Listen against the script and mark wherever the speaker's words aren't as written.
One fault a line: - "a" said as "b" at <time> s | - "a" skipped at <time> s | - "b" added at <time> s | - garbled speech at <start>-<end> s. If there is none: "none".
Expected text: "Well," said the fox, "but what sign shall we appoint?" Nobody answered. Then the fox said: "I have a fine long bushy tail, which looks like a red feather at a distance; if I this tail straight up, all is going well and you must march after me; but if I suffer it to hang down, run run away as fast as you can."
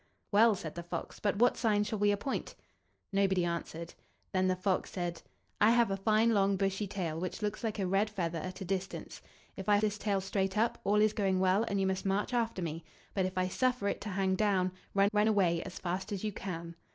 none